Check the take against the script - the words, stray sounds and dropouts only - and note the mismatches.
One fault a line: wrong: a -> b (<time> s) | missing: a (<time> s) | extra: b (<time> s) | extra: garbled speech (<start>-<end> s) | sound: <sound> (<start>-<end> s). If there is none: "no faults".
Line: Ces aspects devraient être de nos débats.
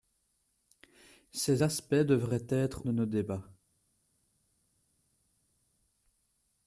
no faults